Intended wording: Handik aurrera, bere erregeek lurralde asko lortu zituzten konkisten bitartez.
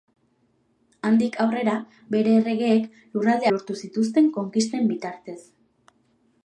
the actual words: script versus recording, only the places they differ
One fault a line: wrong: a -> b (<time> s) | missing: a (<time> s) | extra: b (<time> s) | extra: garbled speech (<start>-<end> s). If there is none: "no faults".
missing: asko (3.5 s)